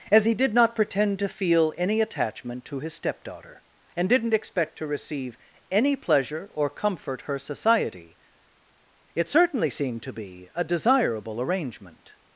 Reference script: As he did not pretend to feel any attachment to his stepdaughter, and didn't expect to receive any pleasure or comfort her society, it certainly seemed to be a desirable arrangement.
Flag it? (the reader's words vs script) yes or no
no